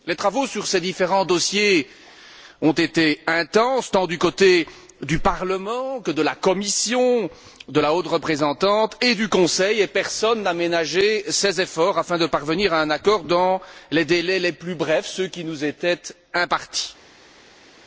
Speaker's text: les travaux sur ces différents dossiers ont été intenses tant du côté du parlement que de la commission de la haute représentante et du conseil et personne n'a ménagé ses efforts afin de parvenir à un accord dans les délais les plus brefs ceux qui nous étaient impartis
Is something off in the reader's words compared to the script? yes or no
no